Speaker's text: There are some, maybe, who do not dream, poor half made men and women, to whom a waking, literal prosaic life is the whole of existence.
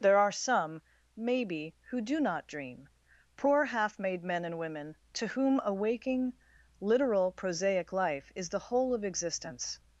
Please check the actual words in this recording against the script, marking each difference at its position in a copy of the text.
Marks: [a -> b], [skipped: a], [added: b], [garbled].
There are some, maybe, who do not dream, poor half made men and women, to whom a waking, literal prosaic life is the whole of existence.